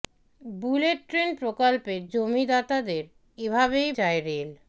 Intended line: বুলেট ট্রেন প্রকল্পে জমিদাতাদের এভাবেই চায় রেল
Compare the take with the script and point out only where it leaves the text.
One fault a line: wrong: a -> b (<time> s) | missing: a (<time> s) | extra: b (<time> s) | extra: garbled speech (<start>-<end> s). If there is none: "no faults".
no faults